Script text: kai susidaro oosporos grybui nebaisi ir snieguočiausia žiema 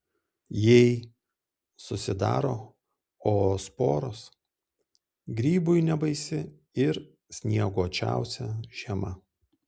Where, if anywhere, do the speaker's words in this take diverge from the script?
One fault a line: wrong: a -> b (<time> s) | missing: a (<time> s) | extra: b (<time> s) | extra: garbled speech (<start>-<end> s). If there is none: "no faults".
wrong: kai -> jei (0.7 s)